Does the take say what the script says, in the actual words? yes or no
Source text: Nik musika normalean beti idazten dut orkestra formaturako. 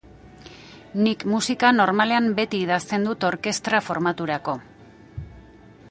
yes